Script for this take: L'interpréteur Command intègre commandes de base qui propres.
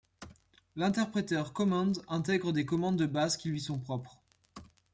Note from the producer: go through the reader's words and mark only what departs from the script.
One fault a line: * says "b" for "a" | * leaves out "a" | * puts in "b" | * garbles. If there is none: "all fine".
* puts in "des"
* puts in "lui sont"